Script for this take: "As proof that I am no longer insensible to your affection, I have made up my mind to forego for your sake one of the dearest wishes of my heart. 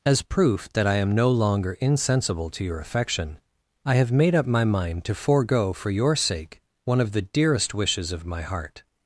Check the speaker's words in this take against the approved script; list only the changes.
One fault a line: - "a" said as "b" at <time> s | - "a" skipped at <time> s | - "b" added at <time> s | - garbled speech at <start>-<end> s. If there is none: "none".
none